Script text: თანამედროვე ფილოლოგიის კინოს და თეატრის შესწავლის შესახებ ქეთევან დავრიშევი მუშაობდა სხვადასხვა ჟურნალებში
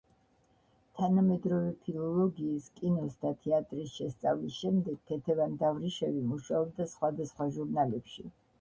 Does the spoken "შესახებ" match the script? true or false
false